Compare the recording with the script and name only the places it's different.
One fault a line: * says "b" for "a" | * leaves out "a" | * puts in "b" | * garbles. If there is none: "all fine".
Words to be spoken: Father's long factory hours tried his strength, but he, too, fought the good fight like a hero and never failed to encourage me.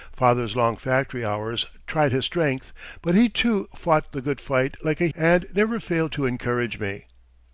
* leaves out "hero"